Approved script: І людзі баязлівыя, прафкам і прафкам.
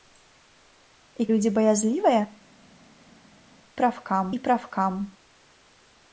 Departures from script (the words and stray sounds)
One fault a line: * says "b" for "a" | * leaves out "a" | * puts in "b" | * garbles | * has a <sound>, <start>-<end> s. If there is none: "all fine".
all fine